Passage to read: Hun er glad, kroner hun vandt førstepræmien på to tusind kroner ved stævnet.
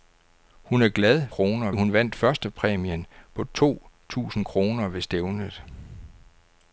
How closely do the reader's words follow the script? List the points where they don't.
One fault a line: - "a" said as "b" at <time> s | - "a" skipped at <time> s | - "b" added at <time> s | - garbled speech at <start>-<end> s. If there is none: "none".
none